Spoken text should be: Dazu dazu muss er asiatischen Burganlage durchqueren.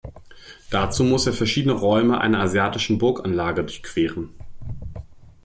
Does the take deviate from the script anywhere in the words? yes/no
yes